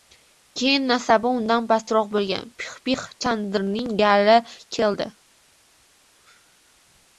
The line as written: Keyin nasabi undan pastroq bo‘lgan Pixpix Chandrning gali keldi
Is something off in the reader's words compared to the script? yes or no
no